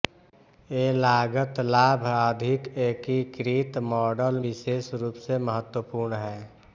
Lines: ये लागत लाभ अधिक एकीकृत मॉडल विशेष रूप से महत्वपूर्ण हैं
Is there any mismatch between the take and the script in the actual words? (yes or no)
no